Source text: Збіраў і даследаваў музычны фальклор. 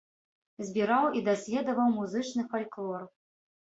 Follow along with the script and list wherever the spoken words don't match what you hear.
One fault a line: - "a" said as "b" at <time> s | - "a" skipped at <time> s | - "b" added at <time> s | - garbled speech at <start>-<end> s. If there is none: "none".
none